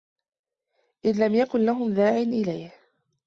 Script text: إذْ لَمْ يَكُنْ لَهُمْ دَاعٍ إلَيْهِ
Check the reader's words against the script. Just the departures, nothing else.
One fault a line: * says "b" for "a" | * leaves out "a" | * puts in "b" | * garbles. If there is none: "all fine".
all fine